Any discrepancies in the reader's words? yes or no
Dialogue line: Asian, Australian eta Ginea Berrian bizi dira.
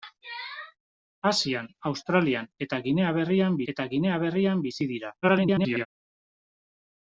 yes